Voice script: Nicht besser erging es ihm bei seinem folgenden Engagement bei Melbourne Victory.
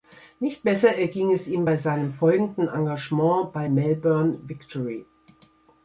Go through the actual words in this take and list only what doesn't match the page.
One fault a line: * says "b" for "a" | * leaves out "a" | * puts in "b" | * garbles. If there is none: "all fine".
all fine